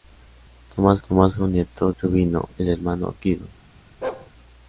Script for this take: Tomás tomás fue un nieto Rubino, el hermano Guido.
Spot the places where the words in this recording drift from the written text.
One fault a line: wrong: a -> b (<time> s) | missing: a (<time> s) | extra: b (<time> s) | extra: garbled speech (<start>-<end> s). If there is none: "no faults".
no faults